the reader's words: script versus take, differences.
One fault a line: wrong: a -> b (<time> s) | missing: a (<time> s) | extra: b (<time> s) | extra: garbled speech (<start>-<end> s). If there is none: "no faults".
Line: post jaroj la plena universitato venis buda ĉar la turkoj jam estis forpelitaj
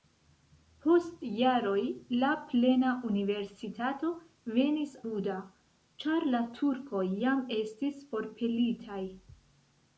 no faults